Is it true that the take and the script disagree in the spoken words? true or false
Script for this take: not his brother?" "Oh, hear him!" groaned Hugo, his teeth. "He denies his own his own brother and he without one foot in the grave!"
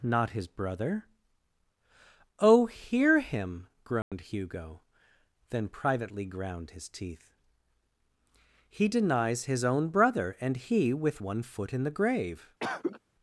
true